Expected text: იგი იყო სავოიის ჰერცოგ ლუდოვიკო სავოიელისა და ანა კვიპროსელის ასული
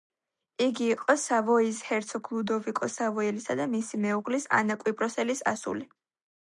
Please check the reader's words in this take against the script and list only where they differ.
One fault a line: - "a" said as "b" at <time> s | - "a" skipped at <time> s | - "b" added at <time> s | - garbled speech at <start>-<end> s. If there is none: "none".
- "მისი მეუღლის" added at 3.8 s